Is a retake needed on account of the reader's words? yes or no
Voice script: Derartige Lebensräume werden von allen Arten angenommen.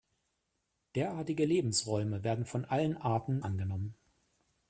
no